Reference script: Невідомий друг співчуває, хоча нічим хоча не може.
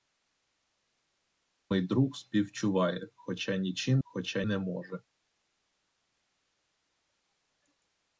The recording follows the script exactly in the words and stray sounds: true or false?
true